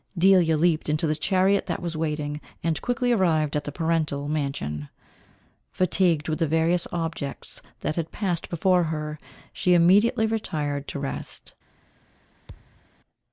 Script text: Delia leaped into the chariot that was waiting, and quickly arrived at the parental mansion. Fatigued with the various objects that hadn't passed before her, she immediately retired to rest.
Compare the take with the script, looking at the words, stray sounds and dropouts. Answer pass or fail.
fail